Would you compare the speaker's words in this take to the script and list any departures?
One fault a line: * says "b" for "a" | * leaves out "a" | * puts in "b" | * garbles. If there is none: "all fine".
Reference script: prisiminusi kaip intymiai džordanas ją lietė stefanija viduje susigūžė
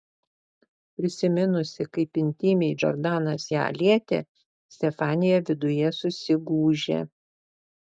all fine